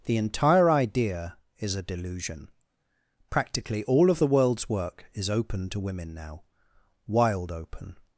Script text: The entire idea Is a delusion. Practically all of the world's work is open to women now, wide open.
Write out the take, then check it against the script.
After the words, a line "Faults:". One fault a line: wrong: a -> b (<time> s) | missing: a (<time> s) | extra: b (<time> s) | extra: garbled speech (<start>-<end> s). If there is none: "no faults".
The entire idea Is a delusion. Practically all of the world's work is open to women now, wild open.
Faults:
wrong: wide -> wild (7.0 s)